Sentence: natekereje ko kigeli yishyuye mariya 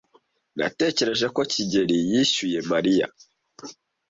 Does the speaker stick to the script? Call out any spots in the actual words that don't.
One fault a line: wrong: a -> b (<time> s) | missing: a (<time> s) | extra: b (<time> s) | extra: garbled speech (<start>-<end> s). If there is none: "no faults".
no faults